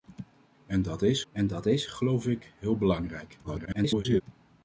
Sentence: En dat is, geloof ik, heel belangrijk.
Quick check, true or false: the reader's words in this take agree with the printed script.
false